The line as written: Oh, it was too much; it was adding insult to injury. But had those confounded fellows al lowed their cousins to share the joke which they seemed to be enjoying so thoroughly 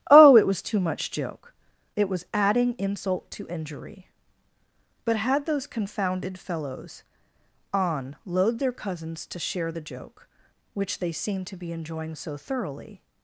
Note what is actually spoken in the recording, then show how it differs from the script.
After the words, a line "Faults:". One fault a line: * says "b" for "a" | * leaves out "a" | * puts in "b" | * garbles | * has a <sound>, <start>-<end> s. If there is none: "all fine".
Oh, it was too much; joke it was adding insult to injury. But had those confounded fellows on load their cousins to share the joke which they seemed to be enjoying so thoroughly
Faults:
* puts in "joke"
* says "on load" for "al lowed"